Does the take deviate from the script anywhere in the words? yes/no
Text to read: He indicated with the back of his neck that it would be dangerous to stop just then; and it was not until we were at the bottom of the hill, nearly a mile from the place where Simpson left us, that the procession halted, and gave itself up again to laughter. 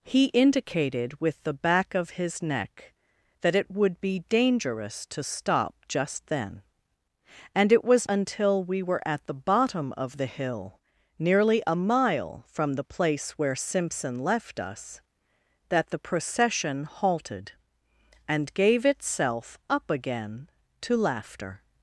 yes